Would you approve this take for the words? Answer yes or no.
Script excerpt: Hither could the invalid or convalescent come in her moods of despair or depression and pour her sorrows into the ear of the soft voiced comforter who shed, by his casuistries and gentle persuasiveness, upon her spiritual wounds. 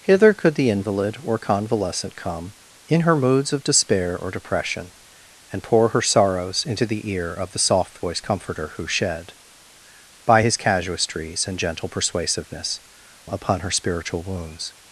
yes